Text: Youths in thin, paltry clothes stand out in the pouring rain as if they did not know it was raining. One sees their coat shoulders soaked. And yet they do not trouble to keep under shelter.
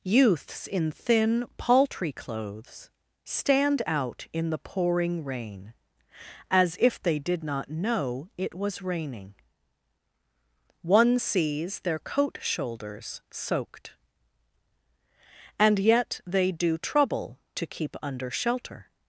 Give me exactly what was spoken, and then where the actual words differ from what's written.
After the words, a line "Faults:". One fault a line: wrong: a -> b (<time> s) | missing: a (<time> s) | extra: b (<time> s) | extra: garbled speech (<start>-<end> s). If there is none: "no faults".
Youths in thin, paltry clothes stand out in the pouring rain as if they did not know it was raining. One sees their coat shoulders soaked. And yet they do trouble to keep under shelter.
Faults:
missing: not (16.8 s)